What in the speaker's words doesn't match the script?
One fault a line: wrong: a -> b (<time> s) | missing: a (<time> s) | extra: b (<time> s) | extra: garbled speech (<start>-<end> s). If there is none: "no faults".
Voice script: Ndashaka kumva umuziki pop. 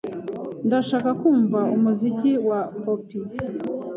extra: wa (2.5 s)